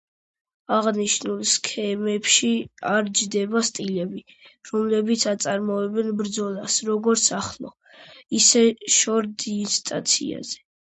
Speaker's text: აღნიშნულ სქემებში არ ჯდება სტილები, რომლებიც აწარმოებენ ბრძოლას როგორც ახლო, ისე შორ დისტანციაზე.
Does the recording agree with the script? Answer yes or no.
yes